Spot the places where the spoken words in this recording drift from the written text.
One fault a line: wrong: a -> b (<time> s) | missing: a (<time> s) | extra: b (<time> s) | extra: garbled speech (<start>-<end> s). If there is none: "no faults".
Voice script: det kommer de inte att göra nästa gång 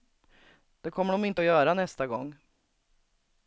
no faults